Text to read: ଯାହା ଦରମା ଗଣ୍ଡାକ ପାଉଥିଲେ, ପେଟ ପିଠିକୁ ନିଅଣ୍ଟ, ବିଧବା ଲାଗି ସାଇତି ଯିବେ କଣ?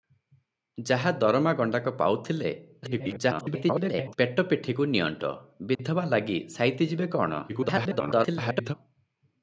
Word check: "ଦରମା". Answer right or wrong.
right